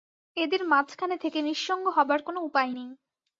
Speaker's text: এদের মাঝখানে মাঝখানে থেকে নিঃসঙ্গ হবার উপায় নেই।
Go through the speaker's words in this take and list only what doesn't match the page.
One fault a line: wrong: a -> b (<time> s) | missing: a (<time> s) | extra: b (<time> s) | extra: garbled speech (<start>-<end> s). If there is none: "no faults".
missing: মাঝখানে (1.1 s)
extra: কোনো (2.2 s)